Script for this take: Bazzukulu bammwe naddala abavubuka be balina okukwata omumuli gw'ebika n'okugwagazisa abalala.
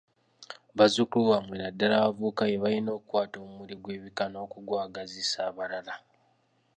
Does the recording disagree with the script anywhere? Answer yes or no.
no